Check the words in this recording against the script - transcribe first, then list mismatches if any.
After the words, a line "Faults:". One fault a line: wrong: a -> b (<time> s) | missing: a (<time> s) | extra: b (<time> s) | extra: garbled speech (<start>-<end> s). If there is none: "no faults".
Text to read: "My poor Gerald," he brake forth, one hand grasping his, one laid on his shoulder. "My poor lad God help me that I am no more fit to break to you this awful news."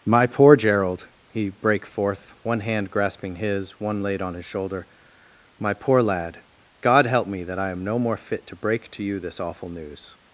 "My poor Gerald," he brake forth, one hand grasping his, one laid on his shoulder. "My poor lad God help me that I am no more fit to break to you this awful news."
Faults:
no faults